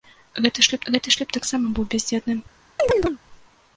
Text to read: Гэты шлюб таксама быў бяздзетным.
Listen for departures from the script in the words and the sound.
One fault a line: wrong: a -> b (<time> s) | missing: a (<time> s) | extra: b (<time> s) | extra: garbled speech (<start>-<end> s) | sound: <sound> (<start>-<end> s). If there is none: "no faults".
extra: гэты шлюб (0.9 s)
sound: chirp (2.8-3.2 s)